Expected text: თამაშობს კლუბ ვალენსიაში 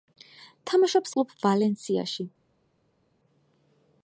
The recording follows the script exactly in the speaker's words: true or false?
true